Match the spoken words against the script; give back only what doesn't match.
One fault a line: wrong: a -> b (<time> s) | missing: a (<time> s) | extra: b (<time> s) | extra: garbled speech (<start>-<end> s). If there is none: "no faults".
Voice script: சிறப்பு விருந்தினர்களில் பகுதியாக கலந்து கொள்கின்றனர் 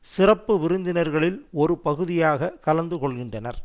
extra: ஒரு (1.5 s)